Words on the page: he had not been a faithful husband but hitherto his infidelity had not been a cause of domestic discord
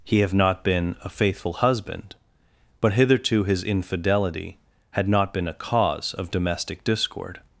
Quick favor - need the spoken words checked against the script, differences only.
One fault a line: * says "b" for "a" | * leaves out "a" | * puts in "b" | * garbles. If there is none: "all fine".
* says "have" for "had"